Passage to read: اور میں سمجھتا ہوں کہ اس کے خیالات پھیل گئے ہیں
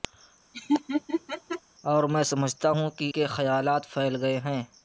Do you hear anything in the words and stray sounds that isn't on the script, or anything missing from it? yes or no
yes